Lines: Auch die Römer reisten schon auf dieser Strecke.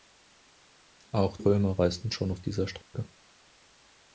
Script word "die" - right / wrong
wrong